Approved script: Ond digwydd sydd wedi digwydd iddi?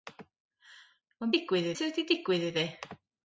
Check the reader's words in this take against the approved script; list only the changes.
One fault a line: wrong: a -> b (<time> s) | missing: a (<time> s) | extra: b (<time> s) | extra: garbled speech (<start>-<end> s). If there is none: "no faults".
no faults